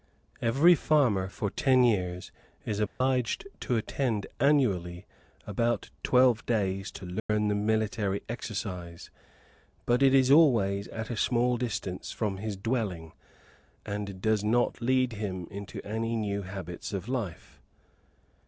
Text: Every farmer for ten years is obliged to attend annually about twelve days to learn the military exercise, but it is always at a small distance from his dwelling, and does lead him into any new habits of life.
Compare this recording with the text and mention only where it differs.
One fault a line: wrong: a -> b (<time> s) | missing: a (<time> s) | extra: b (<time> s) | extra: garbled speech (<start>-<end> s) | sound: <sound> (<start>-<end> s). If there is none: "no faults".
sound: dropout (2.9-3.0 s)
sound: dropout (7.2-7.3 s)
extra: not (14.4 s)